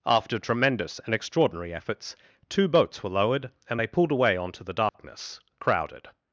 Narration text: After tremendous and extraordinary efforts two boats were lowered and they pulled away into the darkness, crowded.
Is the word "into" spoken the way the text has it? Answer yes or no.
no